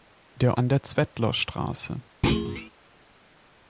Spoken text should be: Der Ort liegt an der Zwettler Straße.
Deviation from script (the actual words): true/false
true